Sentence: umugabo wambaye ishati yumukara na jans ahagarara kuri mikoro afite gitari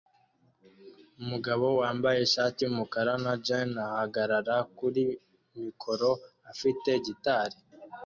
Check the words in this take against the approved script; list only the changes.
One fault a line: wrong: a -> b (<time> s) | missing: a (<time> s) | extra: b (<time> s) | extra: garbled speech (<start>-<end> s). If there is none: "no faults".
no faults